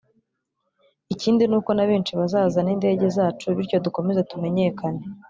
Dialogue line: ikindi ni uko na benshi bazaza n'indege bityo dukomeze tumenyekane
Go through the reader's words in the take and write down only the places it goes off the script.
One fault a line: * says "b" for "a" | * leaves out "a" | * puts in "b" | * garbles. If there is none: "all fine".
* puts in "zacu"